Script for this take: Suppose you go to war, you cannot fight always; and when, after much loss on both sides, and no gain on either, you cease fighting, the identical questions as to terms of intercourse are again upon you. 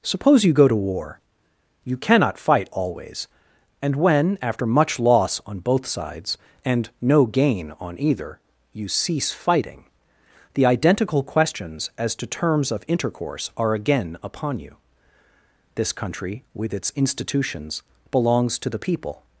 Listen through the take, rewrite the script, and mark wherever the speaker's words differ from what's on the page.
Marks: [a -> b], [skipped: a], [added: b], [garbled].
Suppose you go to war, you cannot fight always; and when, after much loss on both sides, and no gain on either, you cease fighting, the identical questions as to terms of intercourse are again upon you. [added: This country with its institutions belongs to the people]